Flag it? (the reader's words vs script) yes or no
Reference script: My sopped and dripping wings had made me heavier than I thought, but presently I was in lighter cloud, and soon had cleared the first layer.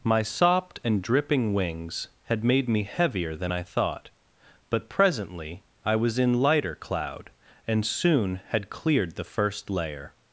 no